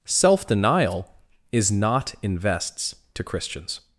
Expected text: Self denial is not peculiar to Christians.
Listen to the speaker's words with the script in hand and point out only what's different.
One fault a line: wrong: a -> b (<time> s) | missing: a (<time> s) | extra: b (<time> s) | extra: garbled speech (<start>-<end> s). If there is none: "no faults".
wrong: peculiar -> invests (2.2 s)